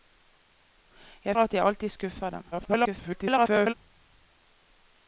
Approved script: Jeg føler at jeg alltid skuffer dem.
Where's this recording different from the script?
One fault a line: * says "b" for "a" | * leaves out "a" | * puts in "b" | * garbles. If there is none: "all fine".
* leaves out "føler"
* garbles